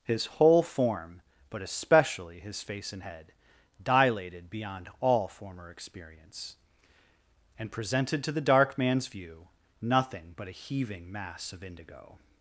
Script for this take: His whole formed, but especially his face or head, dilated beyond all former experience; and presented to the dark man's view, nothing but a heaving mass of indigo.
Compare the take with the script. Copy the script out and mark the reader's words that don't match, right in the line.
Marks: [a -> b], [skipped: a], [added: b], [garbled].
His whole [formed, -> form] but especially his face [or -> and] head, dilated beyond all former experience; and presented to the dark man's view, nothing but a heaving mass of indigo.